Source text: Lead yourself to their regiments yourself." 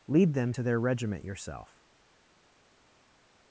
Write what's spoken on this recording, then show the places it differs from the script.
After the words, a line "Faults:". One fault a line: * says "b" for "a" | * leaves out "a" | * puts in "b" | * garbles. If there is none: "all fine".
Lead them to their regiment yourself."
Faults:
* says "them" for "yourself"
* says "regiment" for "regiments"